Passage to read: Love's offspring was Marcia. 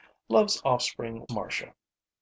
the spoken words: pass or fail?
fail